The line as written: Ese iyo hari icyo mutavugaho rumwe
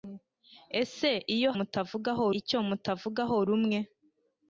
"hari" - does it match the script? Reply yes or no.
no